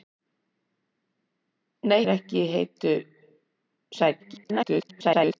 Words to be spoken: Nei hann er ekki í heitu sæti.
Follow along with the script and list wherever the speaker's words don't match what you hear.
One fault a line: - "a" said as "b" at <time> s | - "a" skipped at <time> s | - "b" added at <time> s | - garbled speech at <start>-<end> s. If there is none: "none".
- "hann" skipped at 2.0 s
- garbled speech at 4.2-5.4 s